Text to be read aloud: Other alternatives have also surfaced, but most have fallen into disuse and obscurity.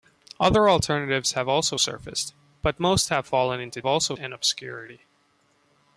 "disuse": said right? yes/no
no